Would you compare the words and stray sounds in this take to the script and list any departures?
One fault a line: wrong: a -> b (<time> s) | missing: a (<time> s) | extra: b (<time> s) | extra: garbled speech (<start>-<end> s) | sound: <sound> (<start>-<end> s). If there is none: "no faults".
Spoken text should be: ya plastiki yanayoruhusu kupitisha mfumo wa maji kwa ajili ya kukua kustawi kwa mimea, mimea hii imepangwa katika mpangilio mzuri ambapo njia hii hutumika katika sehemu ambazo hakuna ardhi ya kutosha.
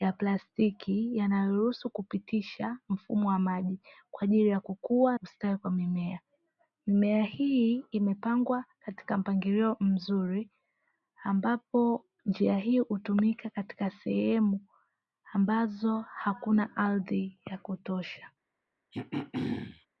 sound: throat clearing (18.9-19.9 s)